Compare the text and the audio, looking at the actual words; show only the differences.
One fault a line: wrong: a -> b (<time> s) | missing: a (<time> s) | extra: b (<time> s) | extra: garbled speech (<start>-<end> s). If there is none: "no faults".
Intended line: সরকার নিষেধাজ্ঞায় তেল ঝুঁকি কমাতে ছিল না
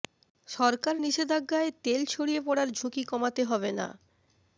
extra: ছড়িয়ে পড়ার (2.0 s)
wrong: ছিল -> হবে (3.4 s)